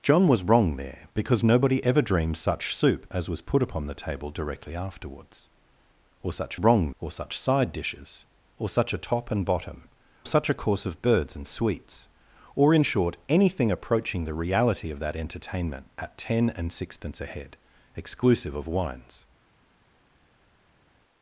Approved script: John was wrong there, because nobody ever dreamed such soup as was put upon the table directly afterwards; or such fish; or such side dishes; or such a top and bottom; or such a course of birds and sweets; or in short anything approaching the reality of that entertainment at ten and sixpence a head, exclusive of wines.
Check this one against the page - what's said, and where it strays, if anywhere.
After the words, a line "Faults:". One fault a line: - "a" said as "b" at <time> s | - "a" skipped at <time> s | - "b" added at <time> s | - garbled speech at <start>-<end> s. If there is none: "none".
John was wrong there, because nobody ever dreamed such soup as was put upon the table directly afterwards; or such wrong; or such side dishes; or such a top and bottom; such a course of birds and sweets; or in short anything approaching the reality of that entertainment at ten and sixpence a head, exclusive of wines.
Faults:
- "fish" said as "wrong" at 6.6 s
- "or" skipped at 9.9 s